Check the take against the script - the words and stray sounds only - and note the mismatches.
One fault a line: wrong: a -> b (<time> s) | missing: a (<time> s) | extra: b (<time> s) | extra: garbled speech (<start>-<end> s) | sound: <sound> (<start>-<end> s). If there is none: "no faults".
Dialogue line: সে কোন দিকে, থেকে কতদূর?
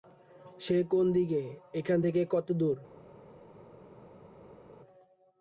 extra: এখান (1.7 s)